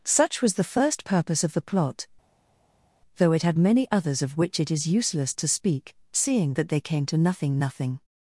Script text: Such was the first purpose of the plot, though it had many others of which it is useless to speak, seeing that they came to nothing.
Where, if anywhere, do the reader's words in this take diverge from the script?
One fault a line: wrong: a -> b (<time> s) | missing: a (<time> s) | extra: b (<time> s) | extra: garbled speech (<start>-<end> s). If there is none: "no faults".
extra: nothing (7.6 s)